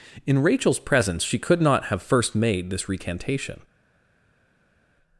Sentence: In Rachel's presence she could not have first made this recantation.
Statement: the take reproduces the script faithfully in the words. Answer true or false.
true